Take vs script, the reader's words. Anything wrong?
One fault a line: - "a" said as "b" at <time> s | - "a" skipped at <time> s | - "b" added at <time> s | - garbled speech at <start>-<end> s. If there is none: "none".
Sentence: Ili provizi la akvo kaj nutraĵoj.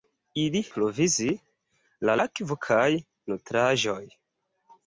none